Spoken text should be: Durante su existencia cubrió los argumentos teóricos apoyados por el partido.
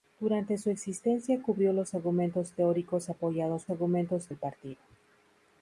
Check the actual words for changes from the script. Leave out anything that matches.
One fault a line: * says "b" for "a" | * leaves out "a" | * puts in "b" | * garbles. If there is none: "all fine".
* says "argumentos" for "por"